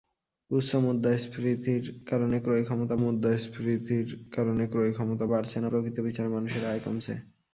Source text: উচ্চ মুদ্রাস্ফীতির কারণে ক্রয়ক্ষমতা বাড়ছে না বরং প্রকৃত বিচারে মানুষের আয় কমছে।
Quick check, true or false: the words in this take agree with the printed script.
false